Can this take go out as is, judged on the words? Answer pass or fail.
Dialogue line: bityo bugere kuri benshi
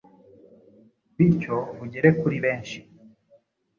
pass